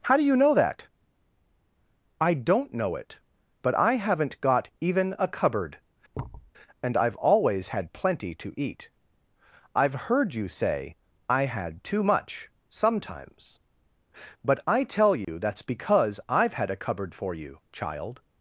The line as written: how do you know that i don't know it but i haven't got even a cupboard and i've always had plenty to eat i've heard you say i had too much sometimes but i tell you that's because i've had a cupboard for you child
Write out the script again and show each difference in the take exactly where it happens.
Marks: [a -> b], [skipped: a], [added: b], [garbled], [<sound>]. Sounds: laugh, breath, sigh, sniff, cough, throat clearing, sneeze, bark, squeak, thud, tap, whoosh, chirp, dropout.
how do you know that i don't know it but i haven't got even a cupboard [thud] and i've always had plenty to eat i've heard you say i had too much sometimes but i tell you [dropout] that's because i've had a cupboard for you child